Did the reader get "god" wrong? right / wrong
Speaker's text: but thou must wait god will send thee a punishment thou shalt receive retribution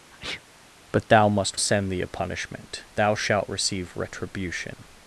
wrong